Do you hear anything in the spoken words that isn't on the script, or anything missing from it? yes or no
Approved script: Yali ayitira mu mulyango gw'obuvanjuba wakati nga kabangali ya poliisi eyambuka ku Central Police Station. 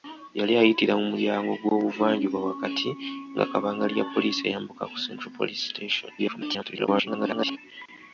yes